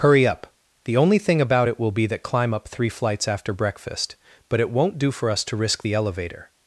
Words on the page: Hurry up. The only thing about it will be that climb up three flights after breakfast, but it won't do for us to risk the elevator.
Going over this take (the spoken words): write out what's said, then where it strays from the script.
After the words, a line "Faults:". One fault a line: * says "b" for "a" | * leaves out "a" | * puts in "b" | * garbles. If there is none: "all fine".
Hurry up. The only thing about it will be that climb up three flights after breakfast, but it won't do for us to risk the elevator.
Faults:
all fine